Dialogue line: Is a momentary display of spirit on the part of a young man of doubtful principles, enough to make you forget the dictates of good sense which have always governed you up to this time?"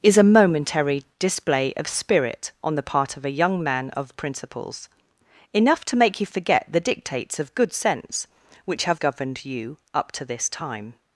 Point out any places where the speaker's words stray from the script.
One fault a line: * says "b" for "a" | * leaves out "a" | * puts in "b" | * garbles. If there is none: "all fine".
* leaves out "doubtful"
* leaves out "always"